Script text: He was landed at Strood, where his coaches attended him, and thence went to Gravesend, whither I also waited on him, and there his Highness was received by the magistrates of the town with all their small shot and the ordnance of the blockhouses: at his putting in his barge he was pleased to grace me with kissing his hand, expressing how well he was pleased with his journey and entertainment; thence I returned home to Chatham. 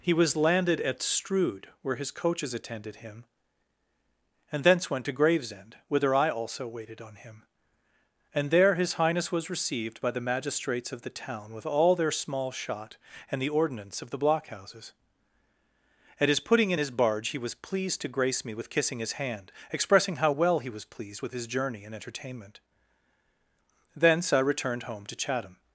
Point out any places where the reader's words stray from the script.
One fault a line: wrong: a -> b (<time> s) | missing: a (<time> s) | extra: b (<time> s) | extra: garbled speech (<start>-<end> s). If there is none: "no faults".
no faults